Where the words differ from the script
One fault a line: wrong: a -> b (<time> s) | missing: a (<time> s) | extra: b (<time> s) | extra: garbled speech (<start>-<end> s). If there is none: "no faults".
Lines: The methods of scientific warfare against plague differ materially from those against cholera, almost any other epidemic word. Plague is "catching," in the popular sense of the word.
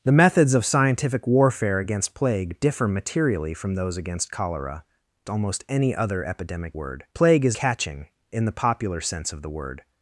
no faults